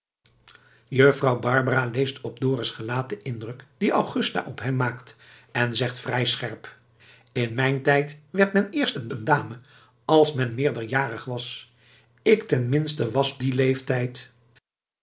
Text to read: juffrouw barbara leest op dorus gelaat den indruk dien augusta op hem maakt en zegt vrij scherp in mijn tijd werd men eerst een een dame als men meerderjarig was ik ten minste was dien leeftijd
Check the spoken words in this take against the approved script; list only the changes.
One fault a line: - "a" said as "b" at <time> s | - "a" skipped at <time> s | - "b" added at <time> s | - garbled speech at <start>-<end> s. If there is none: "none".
none